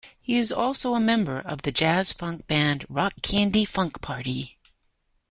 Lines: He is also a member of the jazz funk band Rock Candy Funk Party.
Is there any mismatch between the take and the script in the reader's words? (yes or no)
no